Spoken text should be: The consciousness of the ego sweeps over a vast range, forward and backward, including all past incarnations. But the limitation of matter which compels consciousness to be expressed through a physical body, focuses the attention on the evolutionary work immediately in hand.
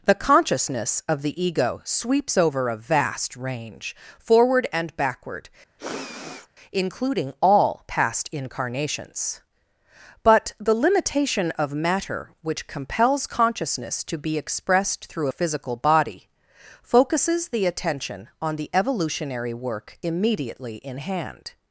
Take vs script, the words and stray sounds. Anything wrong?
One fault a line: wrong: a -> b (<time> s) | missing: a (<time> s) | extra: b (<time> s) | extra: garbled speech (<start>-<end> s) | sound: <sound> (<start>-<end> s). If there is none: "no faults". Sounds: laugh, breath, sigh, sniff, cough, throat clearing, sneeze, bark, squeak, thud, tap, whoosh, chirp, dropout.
sound: sniff (5.8-6.5 s)